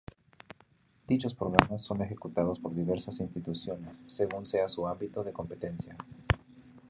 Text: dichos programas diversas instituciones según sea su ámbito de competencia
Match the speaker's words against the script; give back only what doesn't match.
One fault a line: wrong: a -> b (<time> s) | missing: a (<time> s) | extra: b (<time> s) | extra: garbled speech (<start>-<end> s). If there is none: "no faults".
extra: son ejecutados por (1.8 s)